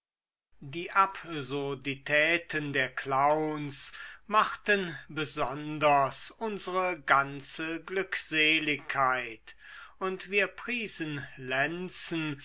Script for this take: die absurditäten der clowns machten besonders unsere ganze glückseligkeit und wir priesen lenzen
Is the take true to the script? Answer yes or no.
yes